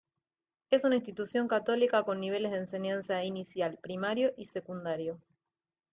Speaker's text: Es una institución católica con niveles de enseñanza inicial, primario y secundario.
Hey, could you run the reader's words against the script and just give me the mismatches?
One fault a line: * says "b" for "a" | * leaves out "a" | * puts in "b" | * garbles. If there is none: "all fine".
all fine